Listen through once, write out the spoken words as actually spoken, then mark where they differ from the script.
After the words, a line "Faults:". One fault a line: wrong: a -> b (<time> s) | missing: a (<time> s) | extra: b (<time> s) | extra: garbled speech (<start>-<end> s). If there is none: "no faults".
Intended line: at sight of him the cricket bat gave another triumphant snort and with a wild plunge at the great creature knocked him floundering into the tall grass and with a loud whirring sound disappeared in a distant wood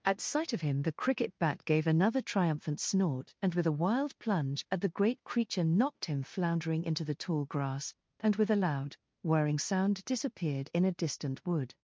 at sight of him the cricket bat gave another triumphant snort and with a wild plunge at the great creature knocked him floundering into the tall grass and with a loud whirring sound disappeared in a distant wood
Faults:
no faults